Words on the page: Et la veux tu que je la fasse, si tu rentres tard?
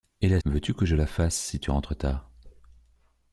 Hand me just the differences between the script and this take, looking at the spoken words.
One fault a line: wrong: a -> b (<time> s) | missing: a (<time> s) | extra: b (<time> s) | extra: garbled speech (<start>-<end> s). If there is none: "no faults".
no faults